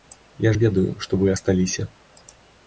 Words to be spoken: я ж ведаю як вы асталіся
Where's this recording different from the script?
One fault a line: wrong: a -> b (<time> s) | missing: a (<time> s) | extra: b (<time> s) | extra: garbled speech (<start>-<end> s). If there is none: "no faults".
wrong: як -> што (1.1 s)